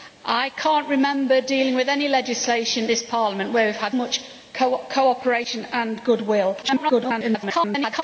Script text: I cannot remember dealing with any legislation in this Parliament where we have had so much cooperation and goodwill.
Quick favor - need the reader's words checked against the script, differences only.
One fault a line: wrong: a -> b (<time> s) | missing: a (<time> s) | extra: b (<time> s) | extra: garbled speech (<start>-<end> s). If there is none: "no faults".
missing: in (2.9 s)
missing: so (4.0 s)
extra: garbled speech (6.6-8.0 s)